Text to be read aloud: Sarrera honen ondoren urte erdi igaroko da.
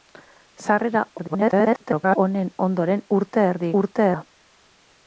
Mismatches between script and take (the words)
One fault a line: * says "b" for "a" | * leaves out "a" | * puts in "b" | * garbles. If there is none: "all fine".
* garbles
* says "urte" for "igaroko"